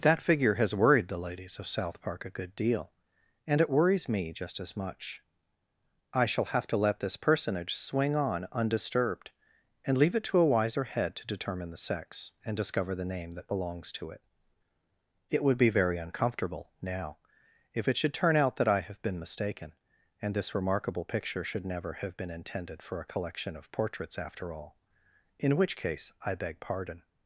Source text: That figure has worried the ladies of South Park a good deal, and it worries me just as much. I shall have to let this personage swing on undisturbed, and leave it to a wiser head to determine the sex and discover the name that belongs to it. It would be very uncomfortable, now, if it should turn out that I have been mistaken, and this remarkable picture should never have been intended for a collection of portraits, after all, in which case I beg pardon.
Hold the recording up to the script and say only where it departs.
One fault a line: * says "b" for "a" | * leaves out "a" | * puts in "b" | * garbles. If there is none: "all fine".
all fine